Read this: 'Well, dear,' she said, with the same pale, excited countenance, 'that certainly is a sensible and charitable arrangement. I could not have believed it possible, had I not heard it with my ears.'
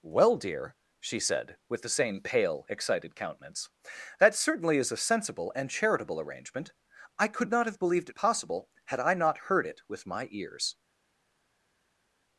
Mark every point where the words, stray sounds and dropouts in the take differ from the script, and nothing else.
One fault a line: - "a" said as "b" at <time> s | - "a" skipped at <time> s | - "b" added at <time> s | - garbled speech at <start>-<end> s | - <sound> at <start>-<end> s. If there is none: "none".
none